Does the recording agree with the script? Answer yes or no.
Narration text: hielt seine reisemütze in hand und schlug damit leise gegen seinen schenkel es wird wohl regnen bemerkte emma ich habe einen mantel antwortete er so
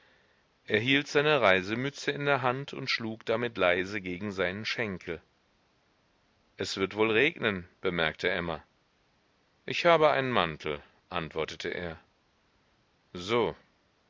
no